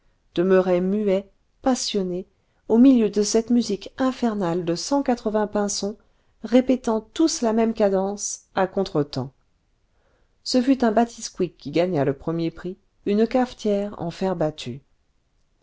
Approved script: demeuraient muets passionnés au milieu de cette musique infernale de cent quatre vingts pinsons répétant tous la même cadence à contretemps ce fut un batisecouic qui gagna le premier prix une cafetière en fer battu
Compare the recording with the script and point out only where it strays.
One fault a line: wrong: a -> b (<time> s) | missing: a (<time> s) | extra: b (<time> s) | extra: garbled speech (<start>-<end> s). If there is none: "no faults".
no faults